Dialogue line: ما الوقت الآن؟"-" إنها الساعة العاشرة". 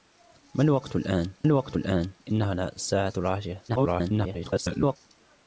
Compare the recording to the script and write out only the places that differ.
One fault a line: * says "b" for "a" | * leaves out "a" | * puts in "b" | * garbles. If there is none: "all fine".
* puts in "الوقت الآن"
* garbles